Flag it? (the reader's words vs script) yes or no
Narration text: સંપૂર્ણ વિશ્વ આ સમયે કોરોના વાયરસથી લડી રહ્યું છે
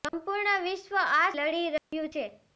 yes